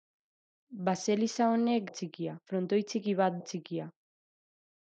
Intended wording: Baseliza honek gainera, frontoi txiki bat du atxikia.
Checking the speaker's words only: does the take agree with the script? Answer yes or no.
no